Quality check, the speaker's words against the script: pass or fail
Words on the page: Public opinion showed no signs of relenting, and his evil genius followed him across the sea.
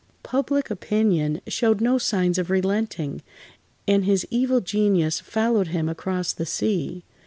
pass